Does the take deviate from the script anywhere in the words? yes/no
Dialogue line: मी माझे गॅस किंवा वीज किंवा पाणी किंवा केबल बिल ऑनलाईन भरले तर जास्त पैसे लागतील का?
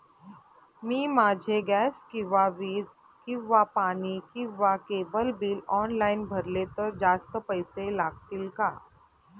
no